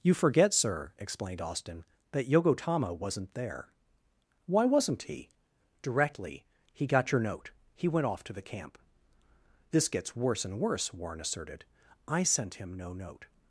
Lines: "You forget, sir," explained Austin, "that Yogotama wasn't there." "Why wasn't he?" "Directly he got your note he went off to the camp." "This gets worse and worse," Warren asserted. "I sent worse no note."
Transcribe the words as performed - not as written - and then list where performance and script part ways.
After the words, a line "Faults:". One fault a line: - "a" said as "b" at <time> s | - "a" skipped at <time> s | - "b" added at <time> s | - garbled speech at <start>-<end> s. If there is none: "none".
"You forget, sir," explained Austin, "that Yogotama wasn't there." "Why wasn't he?" "Directly he got your note he went off to the camp." "This gets worse and worse," Warren asserted. "I sent him no note."
Faults:
- "worse" said as "him" at 12.6 s